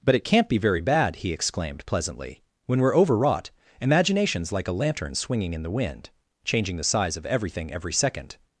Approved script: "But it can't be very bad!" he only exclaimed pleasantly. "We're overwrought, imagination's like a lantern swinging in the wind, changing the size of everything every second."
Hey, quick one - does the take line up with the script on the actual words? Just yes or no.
no